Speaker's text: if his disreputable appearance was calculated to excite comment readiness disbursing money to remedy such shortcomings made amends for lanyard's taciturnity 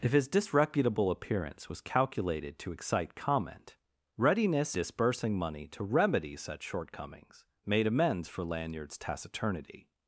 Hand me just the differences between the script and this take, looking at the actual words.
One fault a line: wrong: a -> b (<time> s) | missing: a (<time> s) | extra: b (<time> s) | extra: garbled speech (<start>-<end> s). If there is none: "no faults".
no faults